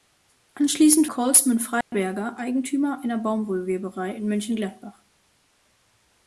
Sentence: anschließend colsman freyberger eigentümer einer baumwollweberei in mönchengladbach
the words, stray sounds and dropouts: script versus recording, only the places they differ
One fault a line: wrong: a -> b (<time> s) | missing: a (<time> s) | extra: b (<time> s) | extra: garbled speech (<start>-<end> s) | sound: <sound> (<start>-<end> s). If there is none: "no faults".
sound: dropout (1.8-1.9 s)